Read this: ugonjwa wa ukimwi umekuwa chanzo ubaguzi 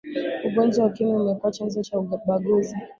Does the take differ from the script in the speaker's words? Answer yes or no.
yes